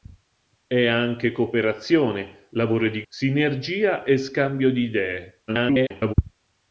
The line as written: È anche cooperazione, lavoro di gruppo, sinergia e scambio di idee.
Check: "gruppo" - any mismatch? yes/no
yes